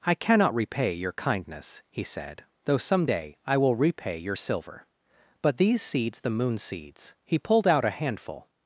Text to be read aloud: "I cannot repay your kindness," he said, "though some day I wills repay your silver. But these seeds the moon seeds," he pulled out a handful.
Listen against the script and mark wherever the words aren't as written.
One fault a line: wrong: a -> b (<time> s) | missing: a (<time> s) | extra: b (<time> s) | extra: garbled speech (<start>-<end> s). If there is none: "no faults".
wrong: wills -> will (3.6 s)